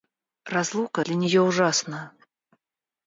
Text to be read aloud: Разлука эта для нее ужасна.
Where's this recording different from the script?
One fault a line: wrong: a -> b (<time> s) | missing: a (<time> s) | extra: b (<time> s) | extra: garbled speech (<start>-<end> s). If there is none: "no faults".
missing: эта (1.0 s)